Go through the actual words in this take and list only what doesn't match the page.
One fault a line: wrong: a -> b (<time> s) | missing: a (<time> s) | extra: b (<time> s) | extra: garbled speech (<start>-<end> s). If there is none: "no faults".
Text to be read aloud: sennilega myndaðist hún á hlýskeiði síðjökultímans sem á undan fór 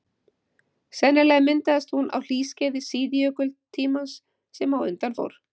no faults